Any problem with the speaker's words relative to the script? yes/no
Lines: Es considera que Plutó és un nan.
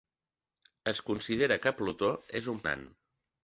no